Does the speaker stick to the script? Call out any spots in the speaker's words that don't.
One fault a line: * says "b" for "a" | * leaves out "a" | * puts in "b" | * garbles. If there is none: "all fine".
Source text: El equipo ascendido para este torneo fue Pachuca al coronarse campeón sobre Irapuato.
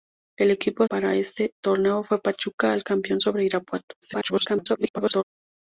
* leaves out "ascendido"
* leaves out "coronarse"
* garbles